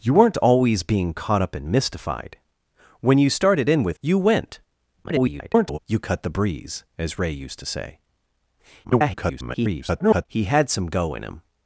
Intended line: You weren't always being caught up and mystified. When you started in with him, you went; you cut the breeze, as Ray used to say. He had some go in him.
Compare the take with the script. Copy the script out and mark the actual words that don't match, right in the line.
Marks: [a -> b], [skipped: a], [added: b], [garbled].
You weren't always being caught up and mystified. When you started in with [skipped: him,] you went; [garbled] you cut the breeze, as Ray used to say. [garbled] He had some go in him.